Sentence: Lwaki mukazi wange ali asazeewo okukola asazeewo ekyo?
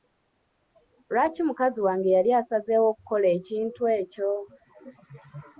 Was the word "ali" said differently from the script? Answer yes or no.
yes